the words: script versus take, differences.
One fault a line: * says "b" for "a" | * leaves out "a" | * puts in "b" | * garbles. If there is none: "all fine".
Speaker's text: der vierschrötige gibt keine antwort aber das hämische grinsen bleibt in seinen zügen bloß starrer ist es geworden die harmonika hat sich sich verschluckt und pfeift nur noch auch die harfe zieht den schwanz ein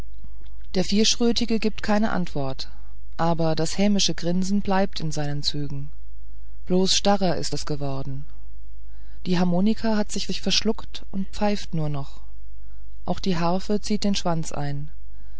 all fine